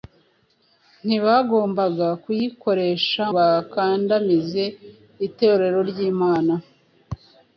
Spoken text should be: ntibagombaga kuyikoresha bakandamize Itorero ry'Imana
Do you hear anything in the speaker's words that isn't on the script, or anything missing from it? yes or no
no